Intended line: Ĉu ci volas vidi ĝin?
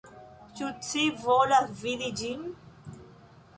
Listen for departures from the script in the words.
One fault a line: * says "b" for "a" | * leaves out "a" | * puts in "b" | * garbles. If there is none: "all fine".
all fine